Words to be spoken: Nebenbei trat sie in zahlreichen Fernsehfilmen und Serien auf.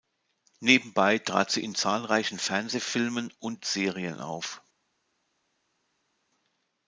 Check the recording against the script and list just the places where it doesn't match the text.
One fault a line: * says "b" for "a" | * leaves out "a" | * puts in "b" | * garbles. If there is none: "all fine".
all fine